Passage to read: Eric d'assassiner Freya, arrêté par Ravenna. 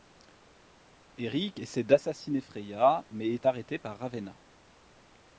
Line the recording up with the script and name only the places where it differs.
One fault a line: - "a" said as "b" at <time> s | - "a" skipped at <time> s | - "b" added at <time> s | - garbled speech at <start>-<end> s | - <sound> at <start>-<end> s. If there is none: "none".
- "essaie" added at 1.6 s
- "mais est" added at 3.1 s